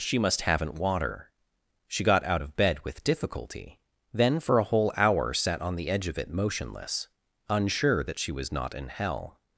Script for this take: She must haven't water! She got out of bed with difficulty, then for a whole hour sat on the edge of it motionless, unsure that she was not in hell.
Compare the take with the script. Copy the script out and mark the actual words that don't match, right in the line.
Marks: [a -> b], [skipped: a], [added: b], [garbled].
She must haven't water! She got out of bed with difficulty, then for a whole hour sat on the edge of it motionless, unsure that she was not in hell.